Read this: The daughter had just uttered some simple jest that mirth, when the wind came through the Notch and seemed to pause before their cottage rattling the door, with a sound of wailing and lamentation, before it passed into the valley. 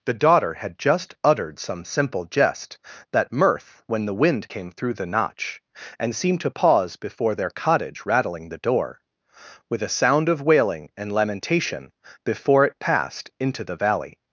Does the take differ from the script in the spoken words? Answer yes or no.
no